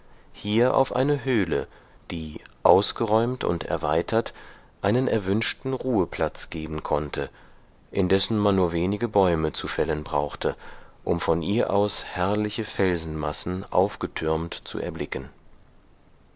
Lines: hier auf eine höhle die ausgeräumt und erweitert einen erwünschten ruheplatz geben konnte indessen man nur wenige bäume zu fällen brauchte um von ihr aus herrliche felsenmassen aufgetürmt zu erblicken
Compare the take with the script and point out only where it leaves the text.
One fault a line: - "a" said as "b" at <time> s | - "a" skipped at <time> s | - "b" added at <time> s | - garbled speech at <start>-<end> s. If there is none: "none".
none